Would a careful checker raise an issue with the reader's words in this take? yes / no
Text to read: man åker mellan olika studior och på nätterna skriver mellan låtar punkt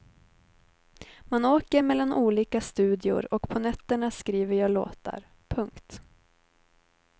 yes